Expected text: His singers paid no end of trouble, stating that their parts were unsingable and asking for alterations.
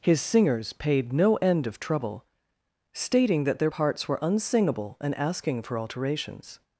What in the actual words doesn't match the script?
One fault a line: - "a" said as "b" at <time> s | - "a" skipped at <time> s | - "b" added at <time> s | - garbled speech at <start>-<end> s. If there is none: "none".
none